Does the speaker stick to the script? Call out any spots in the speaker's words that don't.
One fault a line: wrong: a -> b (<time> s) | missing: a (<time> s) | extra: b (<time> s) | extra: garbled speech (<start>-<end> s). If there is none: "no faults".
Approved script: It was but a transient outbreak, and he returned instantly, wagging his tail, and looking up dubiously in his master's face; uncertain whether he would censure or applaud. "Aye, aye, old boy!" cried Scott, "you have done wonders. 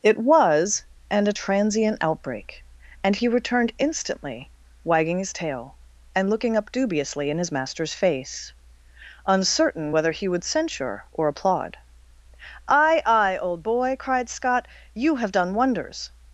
wrong: but -> and (1.1 s)